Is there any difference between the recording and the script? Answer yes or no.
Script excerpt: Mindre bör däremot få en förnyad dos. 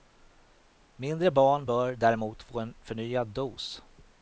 yes